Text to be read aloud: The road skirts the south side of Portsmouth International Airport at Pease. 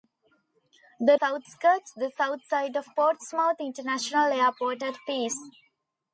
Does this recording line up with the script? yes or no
no